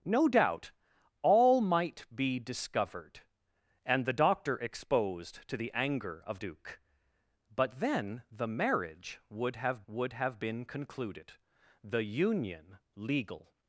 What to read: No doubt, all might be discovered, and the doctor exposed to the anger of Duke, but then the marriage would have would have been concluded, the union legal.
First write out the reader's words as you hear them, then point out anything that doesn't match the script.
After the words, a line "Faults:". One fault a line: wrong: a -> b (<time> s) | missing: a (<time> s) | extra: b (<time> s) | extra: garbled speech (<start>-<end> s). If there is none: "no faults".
No doubt, all might be discovered, and the doctor exposed to the anger of Duke, but then the marriage would have would have been concluded, the union legal.
Faults:
no faults